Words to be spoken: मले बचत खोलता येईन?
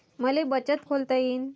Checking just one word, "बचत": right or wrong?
right